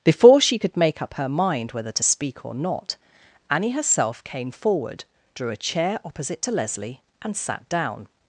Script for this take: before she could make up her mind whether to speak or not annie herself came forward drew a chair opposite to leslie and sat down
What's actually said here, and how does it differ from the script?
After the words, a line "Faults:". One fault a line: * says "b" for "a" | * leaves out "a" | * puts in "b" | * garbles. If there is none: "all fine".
before she could make up her mind whether to speak or not annie herself came forward drew a chair opposite to leslie and sat down
Faults:
all fine